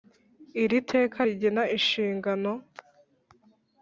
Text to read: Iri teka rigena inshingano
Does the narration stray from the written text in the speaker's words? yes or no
no